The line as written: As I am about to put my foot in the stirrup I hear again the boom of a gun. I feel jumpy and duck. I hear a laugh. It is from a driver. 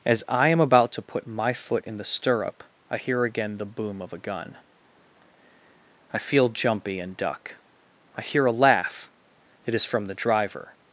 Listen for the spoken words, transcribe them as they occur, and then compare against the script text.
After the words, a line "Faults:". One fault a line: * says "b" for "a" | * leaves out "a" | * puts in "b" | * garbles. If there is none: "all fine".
As I am about to put my foot in the stirrup I hear again the boom of a gun. I feel jumpy and duck. I hear a laugh. It is from the driver.
Faults:
* says "the" for "a"